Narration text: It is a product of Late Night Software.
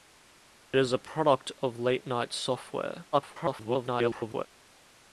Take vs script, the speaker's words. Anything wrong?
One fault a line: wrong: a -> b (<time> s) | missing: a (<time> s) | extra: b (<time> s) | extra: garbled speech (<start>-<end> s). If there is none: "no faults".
extra: garbled speech (3.1-4.5 s)